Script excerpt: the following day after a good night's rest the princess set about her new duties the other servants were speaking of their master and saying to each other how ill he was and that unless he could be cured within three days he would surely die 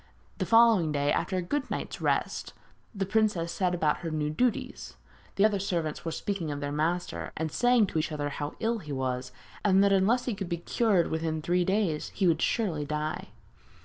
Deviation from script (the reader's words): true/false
false